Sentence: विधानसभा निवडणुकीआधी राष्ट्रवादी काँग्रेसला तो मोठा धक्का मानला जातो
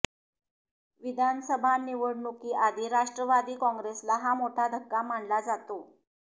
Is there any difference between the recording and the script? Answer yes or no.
yes